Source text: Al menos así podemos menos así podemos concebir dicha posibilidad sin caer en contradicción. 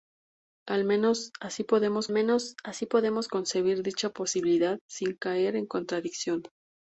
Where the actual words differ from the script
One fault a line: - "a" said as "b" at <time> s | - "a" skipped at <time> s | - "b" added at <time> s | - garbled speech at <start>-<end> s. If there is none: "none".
none